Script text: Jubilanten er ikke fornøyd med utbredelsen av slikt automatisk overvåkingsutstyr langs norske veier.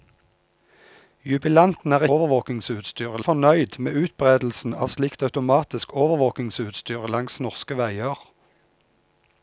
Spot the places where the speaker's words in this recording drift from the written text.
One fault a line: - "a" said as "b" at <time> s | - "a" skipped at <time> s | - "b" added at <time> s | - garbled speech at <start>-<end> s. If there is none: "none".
- "ikke" said as "overvåkingsutstyr" at 2.2 s